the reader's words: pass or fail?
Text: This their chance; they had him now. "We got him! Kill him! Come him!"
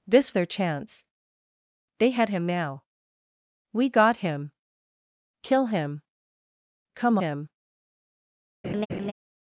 pass